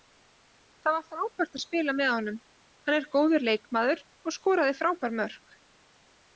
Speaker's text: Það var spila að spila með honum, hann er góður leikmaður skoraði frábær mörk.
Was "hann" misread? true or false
false